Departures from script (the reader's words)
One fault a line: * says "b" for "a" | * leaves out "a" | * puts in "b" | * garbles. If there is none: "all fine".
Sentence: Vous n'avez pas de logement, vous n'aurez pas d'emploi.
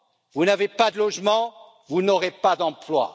all fine